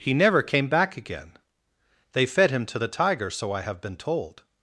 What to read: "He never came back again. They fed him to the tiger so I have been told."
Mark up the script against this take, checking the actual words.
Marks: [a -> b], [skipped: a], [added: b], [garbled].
"He never came back again. They fed him to the tiger so I have been told."